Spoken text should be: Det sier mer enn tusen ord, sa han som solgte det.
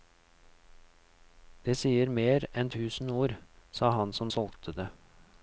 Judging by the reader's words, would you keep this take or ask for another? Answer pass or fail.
pass